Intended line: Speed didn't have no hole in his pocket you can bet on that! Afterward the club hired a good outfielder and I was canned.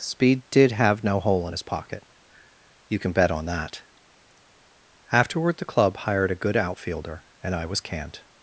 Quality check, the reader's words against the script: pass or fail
fail